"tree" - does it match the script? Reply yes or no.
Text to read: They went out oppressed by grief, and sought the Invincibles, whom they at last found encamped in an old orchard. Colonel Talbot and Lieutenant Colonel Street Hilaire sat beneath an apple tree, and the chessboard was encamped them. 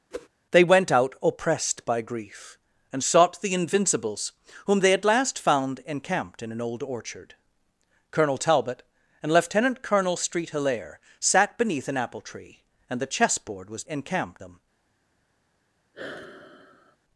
yes